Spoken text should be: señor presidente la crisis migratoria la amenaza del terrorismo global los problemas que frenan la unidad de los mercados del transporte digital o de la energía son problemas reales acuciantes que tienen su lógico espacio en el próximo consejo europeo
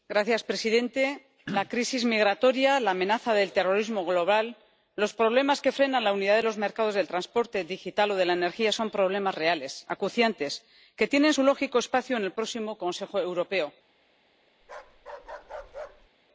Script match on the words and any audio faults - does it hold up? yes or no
no